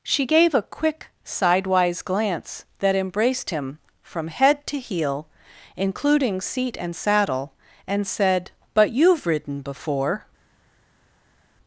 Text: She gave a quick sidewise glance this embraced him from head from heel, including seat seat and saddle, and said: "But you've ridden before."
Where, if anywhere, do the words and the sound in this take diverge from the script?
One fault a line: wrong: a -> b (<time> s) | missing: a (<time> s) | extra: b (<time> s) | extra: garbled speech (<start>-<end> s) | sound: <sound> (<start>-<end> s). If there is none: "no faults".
wrong: this -> that (2.8 s)
wrong: from -> to (4.7 s)
missing: seat (6.8 s)